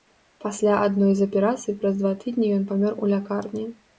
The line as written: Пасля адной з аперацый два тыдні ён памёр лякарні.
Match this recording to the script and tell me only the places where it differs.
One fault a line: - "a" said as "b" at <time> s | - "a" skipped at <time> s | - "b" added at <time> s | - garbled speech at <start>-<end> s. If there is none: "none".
- "праз" added at 1.8 s
- "у" added at 3.0 s